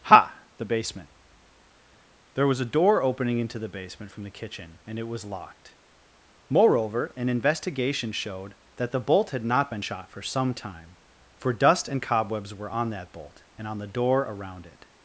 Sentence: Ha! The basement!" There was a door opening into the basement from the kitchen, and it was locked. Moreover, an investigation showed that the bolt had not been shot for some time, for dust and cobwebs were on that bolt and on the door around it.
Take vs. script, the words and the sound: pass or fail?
pass